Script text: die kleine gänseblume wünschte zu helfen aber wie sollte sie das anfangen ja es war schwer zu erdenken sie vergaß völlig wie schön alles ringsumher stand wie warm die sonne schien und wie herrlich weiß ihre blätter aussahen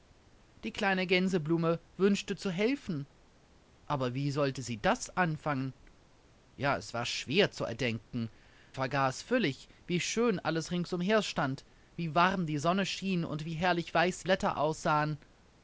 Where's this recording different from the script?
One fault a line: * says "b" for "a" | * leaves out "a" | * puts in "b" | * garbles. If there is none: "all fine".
* leaves out "sie"
* leaves out "ihre"